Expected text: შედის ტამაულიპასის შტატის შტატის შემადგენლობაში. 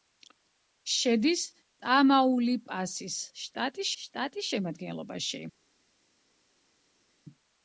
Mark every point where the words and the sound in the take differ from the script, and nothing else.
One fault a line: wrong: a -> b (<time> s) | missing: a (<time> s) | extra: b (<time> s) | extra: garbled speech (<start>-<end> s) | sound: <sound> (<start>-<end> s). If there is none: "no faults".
no faults